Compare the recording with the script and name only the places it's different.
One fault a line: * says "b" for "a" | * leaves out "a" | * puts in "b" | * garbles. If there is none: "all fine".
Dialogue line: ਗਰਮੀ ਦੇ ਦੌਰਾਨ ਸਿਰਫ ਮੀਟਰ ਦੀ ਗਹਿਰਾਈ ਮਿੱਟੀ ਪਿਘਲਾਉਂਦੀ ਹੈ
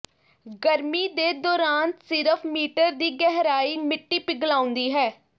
all fine